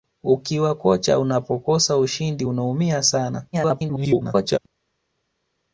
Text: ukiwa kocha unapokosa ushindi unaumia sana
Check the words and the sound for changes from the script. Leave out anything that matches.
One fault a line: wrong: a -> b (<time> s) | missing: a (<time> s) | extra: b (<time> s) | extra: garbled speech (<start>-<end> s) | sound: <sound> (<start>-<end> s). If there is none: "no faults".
extra: garbled speech (3.5-4.6 s)